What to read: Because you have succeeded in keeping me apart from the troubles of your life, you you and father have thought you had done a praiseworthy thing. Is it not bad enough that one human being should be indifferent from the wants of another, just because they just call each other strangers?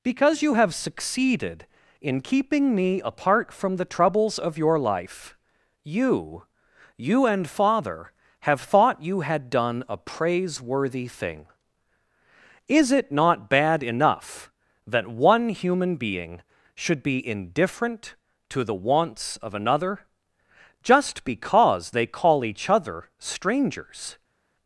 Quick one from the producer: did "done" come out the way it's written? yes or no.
yes